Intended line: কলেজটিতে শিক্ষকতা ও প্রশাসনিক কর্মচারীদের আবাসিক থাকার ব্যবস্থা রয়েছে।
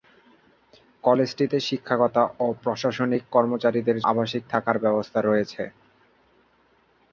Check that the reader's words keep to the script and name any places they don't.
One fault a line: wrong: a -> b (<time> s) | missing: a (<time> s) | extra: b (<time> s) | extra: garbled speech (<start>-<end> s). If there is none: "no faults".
no faults